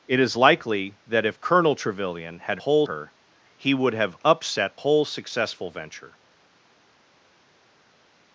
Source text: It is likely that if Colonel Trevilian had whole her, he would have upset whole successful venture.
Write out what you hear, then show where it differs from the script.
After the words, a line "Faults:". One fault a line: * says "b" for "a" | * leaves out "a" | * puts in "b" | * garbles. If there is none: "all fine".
It is likely that if Colonel Trevilian had whole her, he would have upset whole successful venture.
Faults:
all fine